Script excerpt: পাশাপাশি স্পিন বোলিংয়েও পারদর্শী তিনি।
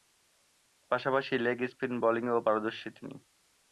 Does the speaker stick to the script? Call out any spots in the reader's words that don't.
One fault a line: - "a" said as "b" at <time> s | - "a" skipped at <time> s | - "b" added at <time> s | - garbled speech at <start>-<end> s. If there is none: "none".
- "লেগ" added at 1.4 s